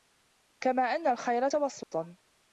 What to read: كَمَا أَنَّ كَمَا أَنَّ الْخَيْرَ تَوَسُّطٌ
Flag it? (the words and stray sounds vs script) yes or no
yes